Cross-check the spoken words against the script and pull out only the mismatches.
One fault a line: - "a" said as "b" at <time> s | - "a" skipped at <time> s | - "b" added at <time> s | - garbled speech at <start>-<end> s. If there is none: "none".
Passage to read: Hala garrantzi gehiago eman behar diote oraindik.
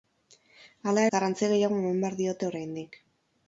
none